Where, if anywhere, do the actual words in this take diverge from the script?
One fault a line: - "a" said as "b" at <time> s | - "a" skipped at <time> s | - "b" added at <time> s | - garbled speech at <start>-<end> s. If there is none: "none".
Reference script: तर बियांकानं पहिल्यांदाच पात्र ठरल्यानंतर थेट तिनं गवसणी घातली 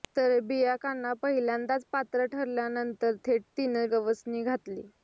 none